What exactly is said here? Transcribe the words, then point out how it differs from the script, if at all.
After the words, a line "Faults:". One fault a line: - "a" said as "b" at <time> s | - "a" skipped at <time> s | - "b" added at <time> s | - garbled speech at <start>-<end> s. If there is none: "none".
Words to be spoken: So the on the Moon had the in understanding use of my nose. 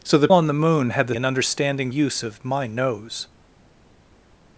So the on the Moon had the in understanding use of my nose.
Faults:
none